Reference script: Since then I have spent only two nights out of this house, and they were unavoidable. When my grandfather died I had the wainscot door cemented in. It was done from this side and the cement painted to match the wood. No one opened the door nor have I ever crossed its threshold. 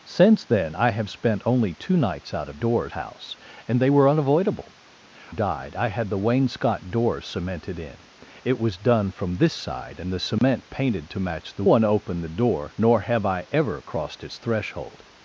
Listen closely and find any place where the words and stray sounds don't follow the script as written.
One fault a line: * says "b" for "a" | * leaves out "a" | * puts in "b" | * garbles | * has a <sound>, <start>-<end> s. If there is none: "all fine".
* says "door" for "this"
* leaves out "When my grandfather"
* has a dropout, 10.4-10.4 s
* leaves out "wood No"